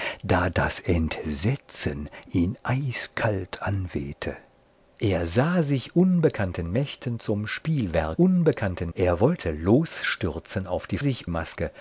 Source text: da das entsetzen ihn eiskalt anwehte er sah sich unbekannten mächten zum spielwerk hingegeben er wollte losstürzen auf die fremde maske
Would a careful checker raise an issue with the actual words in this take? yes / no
yes